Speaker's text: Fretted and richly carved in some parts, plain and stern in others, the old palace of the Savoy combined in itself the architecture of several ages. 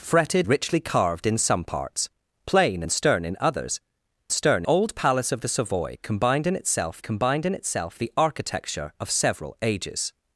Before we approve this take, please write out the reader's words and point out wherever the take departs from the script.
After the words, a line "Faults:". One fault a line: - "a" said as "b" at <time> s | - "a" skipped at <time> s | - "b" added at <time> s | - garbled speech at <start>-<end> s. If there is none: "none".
Fretted richly carved in some parts, plain and stern in others, stern old palace of the Savoy combined in itself combined in itself the architecture of several ages.
Faults:
- "and" skipped at 0.5 s
- "the" said as "stern" at 4.3 s
- "combined in itself" added at 7.0 s